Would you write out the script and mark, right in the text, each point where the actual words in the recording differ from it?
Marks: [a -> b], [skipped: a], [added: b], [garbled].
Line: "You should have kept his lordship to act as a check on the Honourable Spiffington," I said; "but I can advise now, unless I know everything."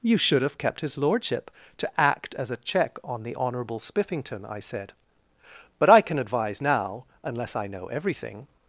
"You should have kept his lordship to act as a check on the Honourable Spiffington," I said; "but I can advise now, unless I know everything."